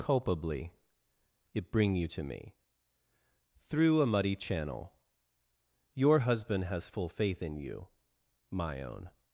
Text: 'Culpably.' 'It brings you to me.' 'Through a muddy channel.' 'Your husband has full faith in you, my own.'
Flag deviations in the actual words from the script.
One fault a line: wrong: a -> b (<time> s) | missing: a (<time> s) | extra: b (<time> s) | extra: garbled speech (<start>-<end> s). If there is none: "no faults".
wrong: brings -> bring (1.7 s)